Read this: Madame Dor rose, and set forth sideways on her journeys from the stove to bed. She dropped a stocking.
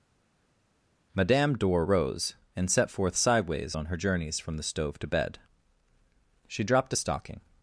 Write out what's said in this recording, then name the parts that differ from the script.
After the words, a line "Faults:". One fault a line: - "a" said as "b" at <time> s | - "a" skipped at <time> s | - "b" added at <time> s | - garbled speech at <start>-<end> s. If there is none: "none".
Madame Dor rose, and set forth sideways on her journeys from the stove to bed. She dropped a stocking.
Faults:
none